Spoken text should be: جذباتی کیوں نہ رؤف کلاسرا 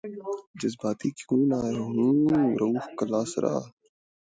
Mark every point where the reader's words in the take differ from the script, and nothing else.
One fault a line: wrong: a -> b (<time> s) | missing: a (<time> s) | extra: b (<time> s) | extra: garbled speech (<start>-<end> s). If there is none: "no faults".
extra: ہوں (1.9 s)